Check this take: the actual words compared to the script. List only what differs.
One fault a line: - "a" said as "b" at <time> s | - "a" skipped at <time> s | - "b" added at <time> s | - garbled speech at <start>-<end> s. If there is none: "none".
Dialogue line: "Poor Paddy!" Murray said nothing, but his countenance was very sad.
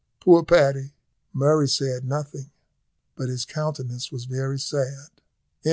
none